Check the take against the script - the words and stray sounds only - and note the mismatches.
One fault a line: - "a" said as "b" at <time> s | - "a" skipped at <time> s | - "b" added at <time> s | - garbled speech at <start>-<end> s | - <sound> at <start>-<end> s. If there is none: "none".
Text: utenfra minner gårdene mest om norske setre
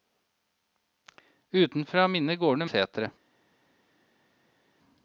- "mest om norske" skipped at 2.6 s